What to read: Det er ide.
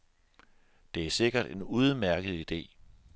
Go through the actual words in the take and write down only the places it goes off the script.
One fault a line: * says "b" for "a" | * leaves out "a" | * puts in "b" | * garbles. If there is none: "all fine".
* puts in "sikkert en udmærket"